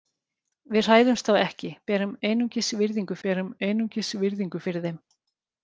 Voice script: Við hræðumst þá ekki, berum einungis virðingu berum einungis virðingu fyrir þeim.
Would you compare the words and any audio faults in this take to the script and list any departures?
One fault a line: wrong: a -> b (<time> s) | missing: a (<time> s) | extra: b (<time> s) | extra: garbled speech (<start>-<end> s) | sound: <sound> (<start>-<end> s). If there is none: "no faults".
no faults